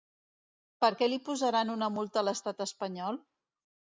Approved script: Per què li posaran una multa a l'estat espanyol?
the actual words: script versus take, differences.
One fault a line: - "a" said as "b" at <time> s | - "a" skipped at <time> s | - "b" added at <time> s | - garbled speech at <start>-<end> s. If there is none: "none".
none